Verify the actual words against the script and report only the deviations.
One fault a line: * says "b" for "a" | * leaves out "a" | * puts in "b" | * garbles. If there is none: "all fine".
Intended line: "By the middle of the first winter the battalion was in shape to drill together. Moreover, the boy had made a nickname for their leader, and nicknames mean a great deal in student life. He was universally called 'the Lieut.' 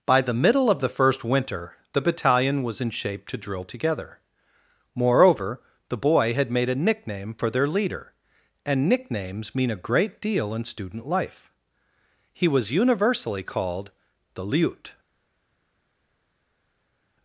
all fine